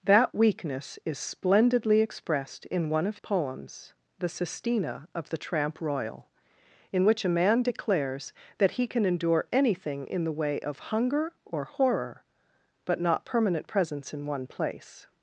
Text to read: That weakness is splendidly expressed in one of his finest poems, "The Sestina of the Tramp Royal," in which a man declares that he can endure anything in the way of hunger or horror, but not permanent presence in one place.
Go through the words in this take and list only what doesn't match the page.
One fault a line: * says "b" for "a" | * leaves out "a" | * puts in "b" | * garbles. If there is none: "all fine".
* leaves out "his finest"